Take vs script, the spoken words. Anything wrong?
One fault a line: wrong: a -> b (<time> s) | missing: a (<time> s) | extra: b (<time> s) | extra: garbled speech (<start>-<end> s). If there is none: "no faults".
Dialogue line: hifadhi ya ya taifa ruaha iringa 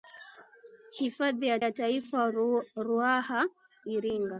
no faults